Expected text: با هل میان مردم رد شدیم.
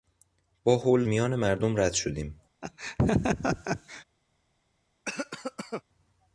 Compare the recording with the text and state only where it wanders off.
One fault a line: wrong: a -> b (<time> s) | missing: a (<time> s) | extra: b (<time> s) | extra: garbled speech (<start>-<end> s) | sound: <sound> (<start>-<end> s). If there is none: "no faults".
sound: laugh (2.6-4.0 s)
sound: cough (5.1-5.8 s)